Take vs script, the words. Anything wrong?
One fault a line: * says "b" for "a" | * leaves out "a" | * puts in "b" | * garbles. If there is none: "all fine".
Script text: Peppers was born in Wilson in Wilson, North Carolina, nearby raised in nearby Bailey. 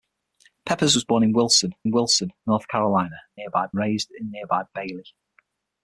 all fine